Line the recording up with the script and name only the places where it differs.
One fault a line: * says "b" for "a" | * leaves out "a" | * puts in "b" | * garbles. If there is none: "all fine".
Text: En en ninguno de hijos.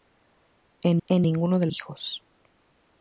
all fine